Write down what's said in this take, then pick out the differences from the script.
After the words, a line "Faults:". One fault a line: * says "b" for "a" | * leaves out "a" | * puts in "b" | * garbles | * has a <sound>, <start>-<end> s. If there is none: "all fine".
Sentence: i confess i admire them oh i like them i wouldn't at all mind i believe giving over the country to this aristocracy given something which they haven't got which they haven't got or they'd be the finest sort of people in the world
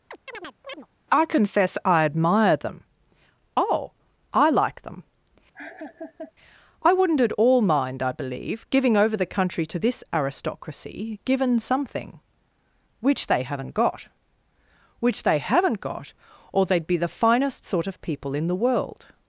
i confess i admire them oh i like them i wouldn't at all mind i believe giving over the country to this aristocracy given something which they haven't got which they haven't got or they'd be the finest sort of people in the world
Faults:
* has a chirp, 0.1-0.9 s
* has a laugh, 5.5-6.3 s